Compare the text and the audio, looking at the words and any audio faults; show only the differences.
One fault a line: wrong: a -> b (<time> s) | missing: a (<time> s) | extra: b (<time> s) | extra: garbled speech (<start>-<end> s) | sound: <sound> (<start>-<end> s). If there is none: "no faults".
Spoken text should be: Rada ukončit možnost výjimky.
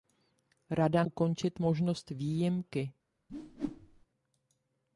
sound: whoosh (3.3-4.1 s)